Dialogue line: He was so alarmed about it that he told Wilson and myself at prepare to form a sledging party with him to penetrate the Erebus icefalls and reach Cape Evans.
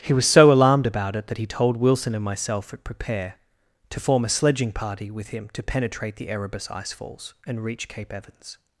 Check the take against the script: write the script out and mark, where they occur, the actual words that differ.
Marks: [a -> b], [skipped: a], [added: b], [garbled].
He was so alarmed about it that he told Wilson and myself at prepare to form a sledging party with him to penetrate the Erebus icefalls and reach Cape Evans.